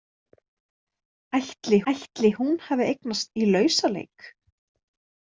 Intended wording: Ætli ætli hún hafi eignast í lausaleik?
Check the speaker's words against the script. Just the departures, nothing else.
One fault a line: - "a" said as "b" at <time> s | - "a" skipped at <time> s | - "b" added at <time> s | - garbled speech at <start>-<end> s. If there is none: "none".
none